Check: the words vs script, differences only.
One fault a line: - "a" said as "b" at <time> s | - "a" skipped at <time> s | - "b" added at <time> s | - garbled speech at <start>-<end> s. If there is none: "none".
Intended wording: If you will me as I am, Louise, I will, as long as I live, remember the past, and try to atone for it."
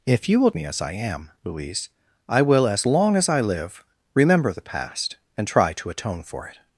none